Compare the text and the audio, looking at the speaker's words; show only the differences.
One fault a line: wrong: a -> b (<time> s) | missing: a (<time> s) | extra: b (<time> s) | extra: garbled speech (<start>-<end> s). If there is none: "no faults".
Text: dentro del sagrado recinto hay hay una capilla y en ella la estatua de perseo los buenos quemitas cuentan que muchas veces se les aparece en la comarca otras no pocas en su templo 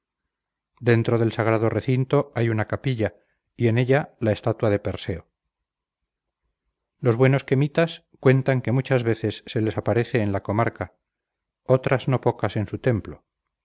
missing: hay (2.5 s)